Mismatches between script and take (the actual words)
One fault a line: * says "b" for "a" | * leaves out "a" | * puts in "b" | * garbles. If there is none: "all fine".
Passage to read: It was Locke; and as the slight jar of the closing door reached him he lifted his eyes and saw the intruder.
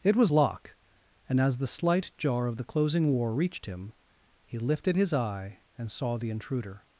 * says "war" for "door"
* says "eye" for "eyes"